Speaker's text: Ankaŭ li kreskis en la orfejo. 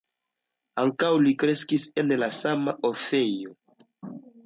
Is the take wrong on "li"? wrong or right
right